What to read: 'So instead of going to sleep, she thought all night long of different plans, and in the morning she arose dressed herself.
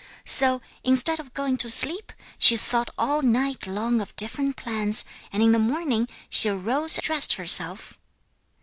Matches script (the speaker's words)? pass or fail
pass